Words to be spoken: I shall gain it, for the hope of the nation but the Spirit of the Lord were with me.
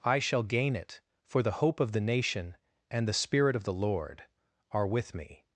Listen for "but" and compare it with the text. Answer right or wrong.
wrong